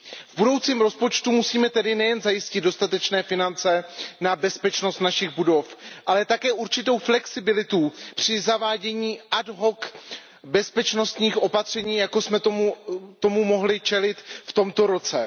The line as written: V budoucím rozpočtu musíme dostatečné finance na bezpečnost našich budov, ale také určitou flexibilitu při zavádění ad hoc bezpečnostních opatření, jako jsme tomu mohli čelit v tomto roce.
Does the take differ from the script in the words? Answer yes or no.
yes